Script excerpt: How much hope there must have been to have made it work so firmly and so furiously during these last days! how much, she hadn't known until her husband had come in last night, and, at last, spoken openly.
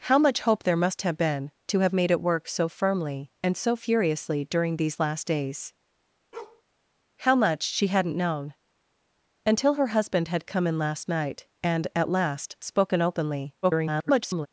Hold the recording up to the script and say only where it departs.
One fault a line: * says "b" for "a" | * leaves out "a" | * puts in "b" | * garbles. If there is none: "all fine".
* garbles